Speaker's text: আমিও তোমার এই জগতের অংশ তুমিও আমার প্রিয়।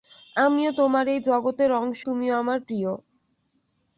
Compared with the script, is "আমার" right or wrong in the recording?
right